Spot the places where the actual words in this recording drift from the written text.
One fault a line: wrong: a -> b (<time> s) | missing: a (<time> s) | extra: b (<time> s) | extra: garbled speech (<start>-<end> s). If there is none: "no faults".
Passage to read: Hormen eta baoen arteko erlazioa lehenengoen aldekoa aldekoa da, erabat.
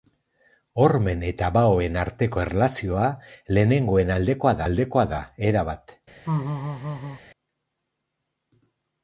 no faults